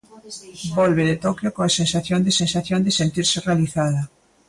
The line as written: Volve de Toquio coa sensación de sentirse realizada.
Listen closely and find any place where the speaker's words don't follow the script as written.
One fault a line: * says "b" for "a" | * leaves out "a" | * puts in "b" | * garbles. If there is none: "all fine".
* puts in "sensación de"